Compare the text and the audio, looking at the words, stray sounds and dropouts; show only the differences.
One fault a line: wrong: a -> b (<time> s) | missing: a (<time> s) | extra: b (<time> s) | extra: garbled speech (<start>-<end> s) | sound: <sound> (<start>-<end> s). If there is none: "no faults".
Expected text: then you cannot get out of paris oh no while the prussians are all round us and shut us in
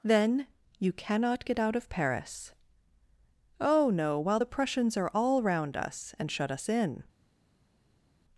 no faults